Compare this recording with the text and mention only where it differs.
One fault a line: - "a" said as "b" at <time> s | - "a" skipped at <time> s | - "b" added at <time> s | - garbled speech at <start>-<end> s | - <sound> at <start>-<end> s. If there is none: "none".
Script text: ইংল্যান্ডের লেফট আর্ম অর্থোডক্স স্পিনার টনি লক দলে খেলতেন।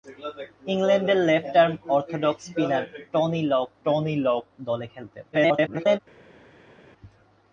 - "টনি লক" added at 3.8 s
- garbled speech at 5.3-6.0 s